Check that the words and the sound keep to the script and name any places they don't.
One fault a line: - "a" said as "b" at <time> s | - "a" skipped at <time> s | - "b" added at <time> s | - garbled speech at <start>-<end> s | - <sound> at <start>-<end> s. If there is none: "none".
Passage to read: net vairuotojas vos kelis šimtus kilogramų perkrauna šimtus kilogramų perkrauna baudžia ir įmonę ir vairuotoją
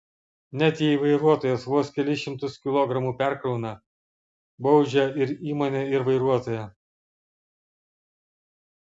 - "jei" added at 0.8 s
- "šimtus kilogramų perkrauna" skipped at 3.8 s